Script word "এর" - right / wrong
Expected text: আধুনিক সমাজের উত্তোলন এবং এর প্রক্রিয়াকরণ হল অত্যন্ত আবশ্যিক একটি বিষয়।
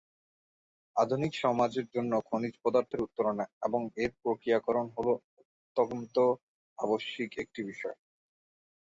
right